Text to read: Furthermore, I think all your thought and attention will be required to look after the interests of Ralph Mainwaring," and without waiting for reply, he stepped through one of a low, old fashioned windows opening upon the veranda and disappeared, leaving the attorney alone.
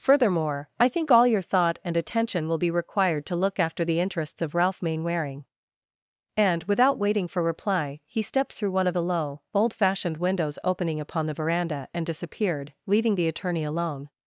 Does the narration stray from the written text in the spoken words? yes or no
yes